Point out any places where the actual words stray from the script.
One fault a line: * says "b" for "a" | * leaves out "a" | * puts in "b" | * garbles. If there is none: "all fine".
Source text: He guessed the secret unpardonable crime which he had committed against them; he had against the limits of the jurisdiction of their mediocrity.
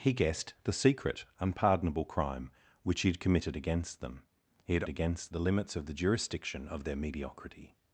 all fine